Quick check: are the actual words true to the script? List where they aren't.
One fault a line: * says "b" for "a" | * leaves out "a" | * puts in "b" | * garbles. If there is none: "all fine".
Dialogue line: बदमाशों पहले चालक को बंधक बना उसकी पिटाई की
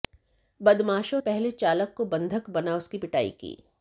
all fine